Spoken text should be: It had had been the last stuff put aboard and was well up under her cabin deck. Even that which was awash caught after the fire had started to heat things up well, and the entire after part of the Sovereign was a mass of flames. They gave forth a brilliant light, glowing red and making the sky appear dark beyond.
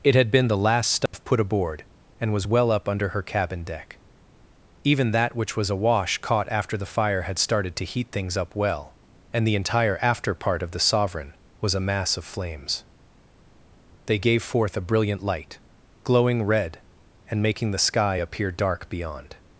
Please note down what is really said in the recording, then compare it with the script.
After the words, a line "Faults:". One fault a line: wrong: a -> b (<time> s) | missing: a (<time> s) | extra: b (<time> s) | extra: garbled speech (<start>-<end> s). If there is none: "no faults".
It had been the last stuff put aboard and was well up under her cabin deck. Even that which was awash caught after the fire had started to heat things up well, and the entire after part of the Sovereign was a mass of flames. They gave forth a brilliant light, glowing red and making the sky appear dark beyond.
Faults:
missing: had (0.3 s)